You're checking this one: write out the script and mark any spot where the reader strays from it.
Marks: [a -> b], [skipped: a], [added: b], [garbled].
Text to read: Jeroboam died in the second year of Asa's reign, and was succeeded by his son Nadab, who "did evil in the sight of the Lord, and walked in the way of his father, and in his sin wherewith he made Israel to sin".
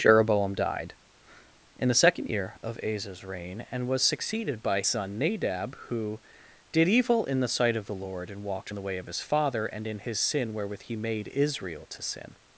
Jeroboam died in the second year of Asa's reign, and was succeeded by [skipped: his] son Nadab, who "did evil in the sight of the Lord, and walked in the way of his father, and in his sin wherewith he made Israel to sin".